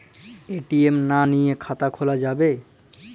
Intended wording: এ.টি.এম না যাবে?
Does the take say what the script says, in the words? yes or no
no